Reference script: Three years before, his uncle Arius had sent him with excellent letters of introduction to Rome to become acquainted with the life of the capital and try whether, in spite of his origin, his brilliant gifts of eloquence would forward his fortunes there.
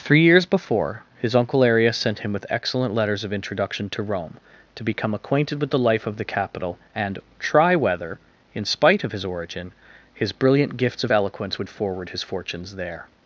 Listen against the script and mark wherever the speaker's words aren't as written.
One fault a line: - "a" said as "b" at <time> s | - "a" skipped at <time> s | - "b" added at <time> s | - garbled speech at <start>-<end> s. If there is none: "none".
- "had" skipped at 1.9 s